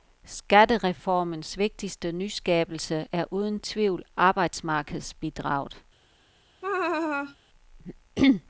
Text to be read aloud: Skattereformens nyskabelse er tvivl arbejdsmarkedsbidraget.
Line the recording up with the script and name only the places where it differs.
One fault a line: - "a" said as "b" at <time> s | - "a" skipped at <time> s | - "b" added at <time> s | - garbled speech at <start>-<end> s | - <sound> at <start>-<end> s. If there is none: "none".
- "vigtigste" added at 1.6 s
- "uden" added at 3.3 s
- laugh at 6.6-7.4 s